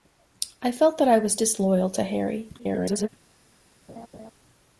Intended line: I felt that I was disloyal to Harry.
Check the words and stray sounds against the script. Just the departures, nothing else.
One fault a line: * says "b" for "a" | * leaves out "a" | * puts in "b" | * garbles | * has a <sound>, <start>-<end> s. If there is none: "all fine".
* garbles
* has a laugh, 3.9-4.3 s